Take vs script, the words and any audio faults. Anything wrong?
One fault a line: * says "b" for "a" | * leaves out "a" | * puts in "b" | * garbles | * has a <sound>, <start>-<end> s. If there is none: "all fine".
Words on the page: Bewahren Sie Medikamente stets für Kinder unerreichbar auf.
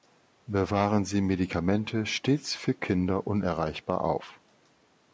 all fine